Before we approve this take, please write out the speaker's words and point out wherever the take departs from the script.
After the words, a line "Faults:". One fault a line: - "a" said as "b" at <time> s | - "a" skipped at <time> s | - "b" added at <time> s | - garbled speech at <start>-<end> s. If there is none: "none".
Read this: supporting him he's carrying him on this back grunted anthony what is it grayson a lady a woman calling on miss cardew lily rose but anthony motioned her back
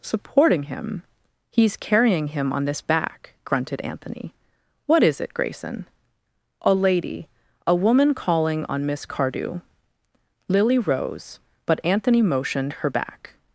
supporting him he's carrying him on this back grunted anthony what is it grayson a lady a woman calling on miss cardew lily rose but anthony motioned her back
Faults:
none